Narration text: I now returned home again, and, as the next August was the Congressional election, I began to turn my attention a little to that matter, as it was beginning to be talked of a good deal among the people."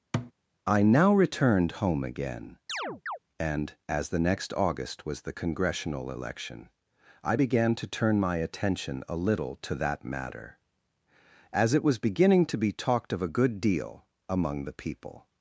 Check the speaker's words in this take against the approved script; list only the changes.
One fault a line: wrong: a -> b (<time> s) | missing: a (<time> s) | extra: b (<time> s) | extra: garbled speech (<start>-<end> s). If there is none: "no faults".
no faults